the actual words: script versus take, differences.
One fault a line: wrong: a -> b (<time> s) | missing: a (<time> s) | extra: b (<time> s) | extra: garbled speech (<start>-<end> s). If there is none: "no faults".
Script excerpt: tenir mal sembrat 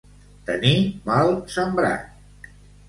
no faults